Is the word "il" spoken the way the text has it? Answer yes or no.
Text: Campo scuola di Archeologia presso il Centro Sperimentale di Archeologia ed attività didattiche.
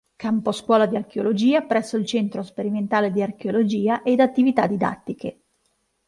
yes